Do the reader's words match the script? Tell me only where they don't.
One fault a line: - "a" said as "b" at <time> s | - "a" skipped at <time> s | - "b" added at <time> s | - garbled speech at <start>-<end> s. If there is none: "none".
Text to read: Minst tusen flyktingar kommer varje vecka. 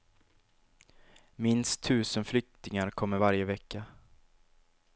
none